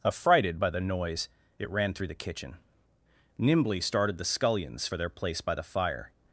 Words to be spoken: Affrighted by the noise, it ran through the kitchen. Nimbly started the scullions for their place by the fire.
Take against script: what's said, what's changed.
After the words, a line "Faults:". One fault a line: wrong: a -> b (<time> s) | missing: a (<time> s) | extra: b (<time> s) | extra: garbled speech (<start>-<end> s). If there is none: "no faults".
Affrighted by the noise, it ran through the kitchen. Nimbly started the scullions for their place by the fire.
Faults:
no faults